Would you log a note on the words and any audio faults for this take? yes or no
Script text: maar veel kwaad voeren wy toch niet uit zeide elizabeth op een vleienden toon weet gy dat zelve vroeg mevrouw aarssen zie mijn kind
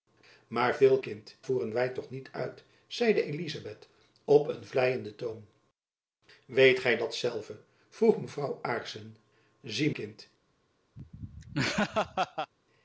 yes